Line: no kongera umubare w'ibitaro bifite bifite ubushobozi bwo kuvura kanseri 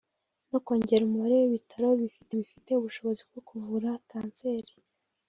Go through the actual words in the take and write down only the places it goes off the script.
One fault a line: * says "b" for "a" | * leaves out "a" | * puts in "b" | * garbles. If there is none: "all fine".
all fine